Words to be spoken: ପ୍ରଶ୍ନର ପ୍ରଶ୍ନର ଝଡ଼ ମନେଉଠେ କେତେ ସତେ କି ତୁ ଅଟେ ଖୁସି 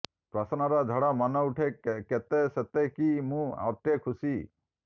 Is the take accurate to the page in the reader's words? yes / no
no